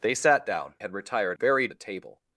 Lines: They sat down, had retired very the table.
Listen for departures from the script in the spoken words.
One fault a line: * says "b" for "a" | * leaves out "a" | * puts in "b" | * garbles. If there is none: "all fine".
all fine